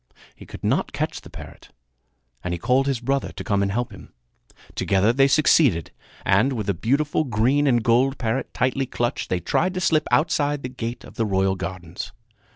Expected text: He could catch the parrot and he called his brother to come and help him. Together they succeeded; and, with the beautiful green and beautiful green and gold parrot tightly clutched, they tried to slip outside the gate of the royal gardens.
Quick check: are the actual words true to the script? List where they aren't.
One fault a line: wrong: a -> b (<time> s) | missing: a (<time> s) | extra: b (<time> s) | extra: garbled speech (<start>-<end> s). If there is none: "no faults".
extra: not (0.6 s)
missing: beautiful green and (7.8 s)